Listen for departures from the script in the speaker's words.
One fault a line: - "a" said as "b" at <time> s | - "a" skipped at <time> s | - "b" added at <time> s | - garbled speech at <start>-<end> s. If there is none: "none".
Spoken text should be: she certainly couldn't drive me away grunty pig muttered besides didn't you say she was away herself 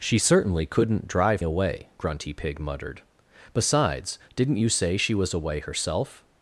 - "me" skipped at 1.4 s